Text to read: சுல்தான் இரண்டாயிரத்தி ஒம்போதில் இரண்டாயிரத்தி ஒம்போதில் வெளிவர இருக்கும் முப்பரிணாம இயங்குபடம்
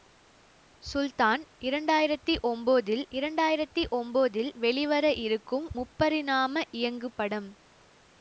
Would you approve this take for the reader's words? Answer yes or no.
yes